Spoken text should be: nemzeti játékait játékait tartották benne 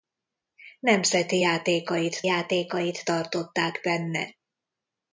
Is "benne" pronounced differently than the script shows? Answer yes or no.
no